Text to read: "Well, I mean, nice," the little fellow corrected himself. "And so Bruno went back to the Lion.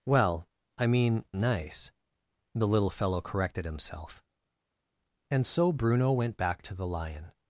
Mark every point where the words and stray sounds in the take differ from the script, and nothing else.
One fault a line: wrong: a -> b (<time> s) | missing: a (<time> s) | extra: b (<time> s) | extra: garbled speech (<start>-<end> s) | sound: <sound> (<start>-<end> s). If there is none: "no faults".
no faults